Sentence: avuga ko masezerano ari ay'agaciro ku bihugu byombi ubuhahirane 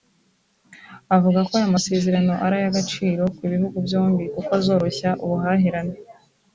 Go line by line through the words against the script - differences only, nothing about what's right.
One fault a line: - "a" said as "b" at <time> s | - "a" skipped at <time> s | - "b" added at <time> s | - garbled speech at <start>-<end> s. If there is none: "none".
- "aya" added at 1.6 s
- "kuko azoroshya" added at 4.3 s